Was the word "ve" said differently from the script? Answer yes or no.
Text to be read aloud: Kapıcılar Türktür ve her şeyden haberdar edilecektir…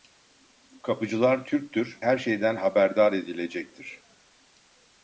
yes